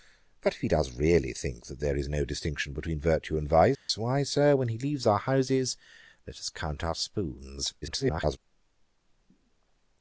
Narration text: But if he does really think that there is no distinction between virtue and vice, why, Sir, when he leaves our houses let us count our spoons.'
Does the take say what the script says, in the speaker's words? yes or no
no